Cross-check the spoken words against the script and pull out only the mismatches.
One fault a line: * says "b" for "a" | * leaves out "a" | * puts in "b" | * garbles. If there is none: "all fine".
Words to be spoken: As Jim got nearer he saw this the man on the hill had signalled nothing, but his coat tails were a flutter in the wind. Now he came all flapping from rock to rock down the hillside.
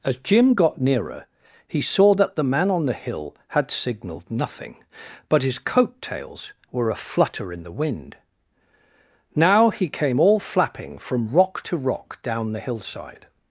* says "that" for "this"